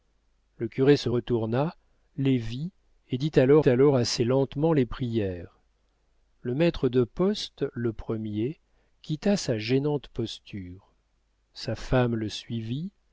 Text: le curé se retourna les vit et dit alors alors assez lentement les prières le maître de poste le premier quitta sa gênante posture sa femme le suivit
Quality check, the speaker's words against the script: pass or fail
pass